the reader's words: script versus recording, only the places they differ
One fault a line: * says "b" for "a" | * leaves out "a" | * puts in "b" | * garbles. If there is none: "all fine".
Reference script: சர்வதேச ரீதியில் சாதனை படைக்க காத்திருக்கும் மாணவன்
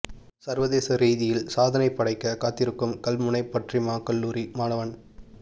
* puts in "கல்முனை பற்றிமா கல்லூரி"